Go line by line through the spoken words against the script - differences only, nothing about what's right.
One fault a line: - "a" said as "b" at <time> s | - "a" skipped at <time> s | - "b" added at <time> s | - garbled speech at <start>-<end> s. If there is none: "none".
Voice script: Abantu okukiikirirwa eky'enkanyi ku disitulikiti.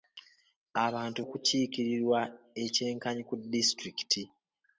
none